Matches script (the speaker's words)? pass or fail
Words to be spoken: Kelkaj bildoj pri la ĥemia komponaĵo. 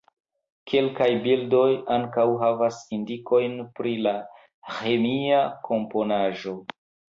fail